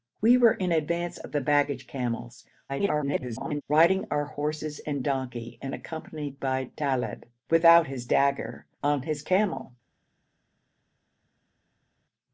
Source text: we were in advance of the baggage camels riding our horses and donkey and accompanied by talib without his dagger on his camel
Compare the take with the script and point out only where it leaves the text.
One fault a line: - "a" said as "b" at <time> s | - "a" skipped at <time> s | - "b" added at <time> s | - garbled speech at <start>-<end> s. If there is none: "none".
- garbled speech at 2.7-3.6 s